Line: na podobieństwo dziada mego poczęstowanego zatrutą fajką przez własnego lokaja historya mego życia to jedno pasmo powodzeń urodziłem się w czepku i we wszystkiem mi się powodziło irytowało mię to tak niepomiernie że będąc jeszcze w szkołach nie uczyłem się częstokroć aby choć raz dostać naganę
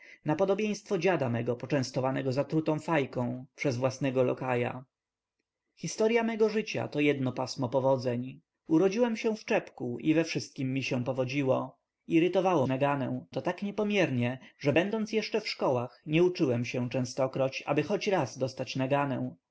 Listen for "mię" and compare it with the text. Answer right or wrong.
wrong